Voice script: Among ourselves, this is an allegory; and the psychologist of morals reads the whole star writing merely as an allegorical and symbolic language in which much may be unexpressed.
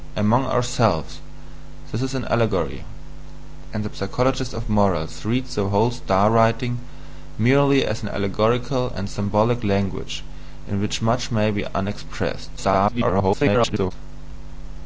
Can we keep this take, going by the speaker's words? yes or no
no